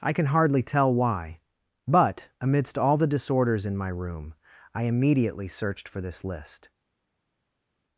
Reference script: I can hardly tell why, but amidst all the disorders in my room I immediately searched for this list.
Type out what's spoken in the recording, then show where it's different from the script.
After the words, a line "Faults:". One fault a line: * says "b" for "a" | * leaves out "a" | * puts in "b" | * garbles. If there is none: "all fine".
I can hardly tell why, but amidst all the disorders in my room I immediately searched for this list.
Faults:
all fine